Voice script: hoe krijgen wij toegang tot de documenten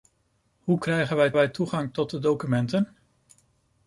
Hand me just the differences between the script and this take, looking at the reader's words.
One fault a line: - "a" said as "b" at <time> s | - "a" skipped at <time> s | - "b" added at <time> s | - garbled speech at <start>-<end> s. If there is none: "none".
- "wij" added at 1.3 s